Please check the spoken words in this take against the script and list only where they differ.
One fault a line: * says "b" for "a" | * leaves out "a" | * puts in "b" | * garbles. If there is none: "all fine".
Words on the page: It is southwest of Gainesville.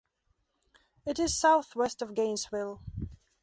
all fine